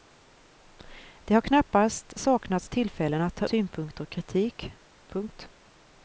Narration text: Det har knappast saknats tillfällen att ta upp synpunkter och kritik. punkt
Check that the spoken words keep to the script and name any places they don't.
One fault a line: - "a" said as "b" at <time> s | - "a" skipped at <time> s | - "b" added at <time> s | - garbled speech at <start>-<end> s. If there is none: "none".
- "upp" skipped at 3.5 s